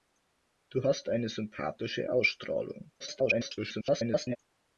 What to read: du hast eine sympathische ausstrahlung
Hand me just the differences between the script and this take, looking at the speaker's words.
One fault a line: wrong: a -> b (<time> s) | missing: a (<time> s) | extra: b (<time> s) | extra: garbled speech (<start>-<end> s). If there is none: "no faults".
extra: garbled speech (3.0-4.4 s)